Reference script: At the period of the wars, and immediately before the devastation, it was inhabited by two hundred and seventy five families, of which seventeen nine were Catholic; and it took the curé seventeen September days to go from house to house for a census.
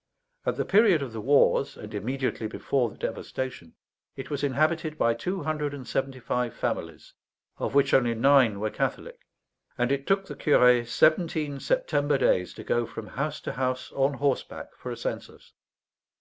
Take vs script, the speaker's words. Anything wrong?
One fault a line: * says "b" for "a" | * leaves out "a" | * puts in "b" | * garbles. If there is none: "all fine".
* says "only" for "seventeen"
* puts in "on horseback"